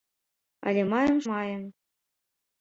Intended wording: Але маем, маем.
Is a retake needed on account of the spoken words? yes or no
no